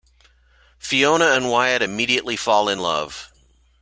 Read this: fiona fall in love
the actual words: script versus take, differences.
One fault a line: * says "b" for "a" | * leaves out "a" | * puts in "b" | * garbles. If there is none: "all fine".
* puts in "and wyatt immediately"